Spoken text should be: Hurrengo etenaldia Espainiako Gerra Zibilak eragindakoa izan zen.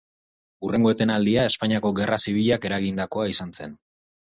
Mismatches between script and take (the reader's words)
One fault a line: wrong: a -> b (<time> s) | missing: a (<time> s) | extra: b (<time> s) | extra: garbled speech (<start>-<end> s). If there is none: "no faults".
no faults